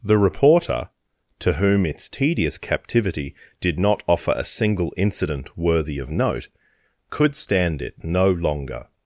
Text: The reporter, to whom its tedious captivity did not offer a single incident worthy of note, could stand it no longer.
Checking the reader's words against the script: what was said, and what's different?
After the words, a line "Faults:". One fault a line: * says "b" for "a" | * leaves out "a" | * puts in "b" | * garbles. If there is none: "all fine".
The reporter, to whom its tedious captivity did not offer a single incident worthy of note, could stand it no longer.
Faults:
all fine